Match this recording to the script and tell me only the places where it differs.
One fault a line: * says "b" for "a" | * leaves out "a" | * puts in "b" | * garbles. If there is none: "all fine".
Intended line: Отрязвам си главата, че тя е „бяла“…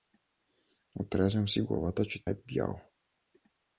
* leaves out "тя"